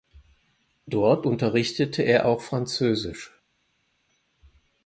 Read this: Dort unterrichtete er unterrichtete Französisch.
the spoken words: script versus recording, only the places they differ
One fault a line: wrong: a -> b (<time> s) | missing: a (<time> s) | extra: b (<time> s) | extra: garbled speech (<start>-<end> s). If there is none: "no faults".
wrong: unterrichtete -> auch (2.3 s)